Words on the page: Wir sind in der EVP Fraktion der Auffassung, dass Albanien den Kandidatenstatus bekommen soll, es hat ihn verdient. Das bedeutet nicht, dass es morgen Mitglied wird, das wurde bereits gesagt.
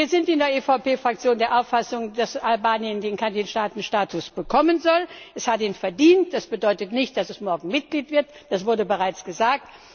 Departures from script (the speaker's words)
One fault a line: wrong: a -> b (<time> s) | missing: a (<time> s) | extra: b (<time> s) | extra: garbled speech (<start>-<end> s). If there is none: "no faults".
no faults